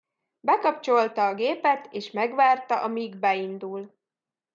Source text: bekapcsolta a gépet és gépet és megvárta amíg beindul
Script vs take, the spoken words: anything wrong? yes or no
yes